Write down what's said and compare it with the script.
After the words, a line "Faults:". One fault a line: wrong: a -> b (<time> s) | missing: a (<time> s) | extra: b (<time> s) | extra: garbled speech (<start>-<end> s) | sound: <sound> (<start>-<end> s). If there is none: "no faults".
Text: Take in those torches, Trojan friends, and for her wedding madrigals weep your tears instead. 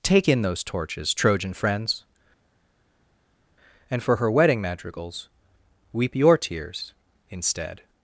Take in those torches, Trojan friends, and for her wedding madrigals weep your tears instead.
Faults:
no faults